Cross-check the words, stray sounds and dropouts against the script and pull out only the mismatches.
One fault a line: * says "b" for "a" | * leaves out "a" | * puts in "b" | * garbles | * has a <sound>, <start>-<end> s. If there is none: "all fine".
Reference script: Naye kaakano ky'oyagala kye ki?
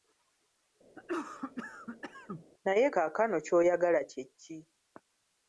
* has a cough, 0.9-2.5 s